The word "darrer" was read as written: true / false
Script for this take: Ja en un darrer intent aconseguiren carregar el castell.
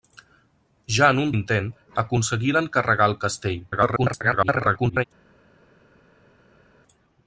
false